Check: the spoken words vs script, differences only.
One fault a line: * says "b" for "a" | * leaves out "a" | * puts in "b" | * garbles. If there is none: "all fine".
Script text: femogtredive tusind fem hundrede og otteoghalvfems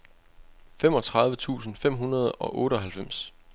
all fine